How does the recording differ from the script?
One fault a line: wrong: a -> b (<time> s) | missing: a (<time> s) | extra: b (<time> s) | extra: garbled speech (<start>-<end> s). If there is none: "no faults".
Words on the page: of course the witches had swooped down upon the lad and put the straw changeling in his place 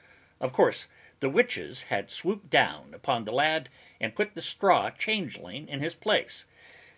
no faults